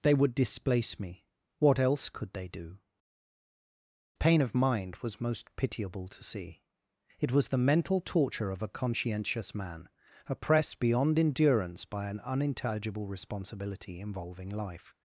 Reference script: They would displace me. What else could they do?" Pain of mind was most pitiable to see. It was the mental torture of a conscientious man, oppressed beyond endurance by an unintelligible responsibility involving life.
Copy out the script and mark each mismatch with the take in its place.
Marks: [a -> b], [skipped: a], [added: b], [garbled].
They would displace me. What else could they do?" Pain of mind was most pitiable to see. It was the mental torture of a conscientious man, oppressed beyond endurance by an unintelligible responsibility involving life.